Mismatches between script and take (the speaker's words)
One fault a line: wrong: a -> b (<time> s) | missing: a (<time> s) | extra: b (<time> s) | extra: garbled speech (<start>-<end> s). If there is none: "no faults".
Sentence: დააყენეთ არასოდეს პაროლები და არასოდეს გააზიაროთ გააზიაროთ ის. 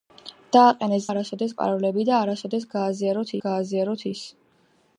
no faults